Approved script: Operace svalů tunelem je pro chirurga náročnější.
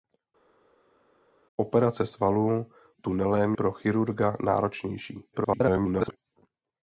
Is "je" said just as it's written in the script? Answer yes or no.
no